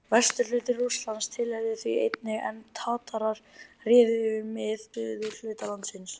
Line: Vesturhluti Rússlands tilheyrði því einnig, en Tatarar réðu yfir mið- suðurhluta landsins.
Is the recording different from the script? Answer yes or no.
no